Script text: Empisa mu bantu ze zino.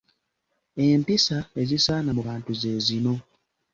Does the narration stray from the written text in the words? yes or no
yes